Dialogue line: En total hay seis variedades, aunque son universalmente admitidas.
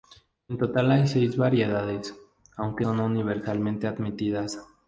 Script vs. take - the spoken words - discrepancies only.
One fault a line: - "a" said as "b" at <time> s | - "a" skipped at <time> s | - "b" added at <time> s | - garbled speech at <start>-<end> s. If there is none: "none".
none